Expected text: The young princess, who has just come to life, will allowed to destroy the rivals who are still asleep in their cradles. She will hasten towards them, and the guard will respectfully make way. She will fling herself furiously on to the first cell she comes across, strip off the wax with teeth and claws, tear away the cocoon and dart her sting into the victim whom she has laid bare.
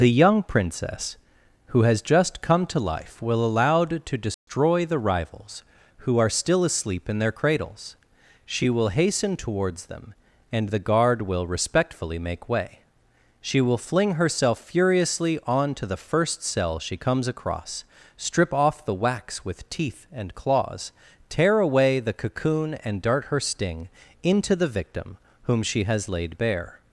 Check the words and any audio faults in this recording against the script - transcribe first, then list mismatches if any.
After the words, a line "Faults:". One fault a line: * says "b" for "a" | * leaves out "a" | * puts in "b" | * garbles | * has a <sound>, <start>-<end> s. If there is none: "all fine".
The young princess, who has just come to life, will allowed to destroy the rivals who are still asleep in their cradles. She will hasten towards them, and the guard will respectfully make way. She will fling herself furiously on to the first cell she comes across, strip off the wax with teeth and claws, tear away the cocoon and dart her sting into the victim whom she has laid bare.
Faults:
* has a dropout, 4.3-4.5 s